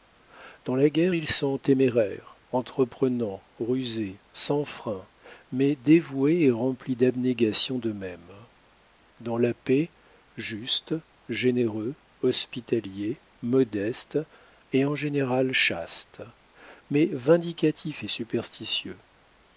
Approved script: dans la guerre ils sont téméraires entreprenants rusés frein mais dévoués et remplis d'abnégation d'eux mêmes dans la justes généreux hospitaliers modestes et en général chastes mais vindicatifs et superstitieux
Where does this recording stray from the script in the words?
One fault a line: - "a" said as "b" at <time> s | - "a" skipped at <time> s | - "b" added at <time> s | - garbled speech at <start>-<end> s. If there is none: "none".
- "sans" added at 4.3 s
- "paix" added at 9.5 s